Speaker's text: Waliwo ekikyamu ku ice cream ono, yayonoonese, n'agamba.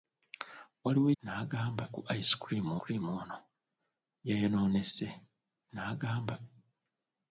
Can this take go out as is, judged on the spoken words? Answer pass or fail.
fail